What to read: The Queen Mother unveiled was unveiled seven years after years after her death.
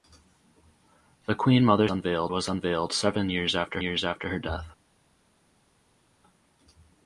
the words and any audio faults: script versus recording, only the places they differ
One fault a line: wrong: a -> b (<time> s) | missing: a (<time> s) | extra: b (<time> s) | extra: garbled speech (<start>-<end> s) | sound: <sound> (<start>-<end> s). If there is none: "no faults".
no faults